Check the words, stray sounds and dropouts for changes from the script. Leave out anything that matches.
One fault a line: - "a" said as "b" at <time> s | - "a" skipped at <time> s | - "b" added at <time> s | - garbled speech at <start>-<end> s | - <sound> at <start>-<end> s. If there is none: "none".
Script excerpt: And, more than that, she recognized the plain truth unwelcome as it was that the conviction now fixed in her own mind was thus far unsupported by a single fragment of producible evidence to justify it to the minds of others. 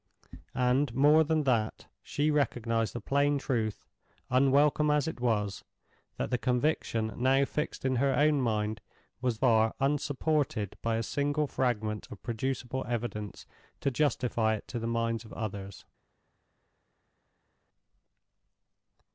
- "thus" skipped at 9.4 s